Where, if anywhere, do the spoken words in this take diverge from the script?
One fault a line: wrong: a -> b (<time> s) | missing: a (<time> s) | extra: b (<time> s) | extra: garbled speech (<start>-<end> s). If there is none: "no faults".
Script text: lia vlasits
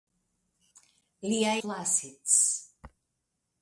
no faults